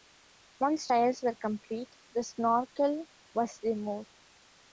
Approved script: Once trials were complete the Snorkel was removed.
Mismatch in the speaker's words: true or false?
false